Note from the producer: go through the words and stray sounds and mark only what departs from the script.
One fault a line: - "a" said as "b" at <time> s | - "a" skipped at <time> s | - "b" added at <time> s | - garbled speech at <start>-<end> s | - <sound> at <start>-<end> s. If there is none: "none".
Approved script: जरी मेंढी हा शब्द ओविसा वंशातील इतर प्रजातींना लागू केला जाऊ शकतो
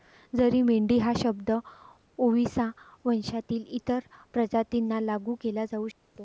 - dropout at 5.9-6.0 s